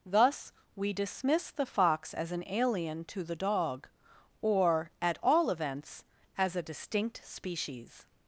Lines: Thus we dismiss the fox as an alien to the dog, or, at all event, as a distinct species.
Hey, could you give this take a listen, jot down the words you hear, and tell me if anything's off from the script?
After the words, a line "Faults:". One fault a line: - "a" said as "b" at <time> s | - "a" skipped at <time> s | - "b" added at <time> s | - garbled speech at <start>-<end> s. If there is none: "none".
Thus we dismiss the fox as an alien to the dog, or, at all events, as a distinct species.
Faults:
- "event" said as "events" at 5.5 s